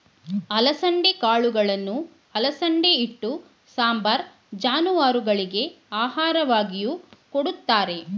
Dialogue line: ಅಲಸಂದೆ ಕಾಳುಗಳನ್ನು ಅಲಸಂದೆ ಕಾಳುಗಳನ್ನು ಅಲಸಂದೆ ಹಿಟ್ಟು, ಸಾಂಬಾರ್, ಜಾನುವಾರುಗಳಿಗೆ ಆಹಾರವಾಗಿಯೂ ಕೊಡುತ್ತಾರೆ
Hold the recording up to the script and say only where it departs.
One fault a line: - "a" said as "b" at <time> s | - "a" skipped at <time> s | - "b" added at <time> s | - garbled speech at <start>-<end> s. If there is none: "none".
- "ಕಾಳುಗಳನ್ನು ಅಲಸಂದೆ" skipped at 2.9 s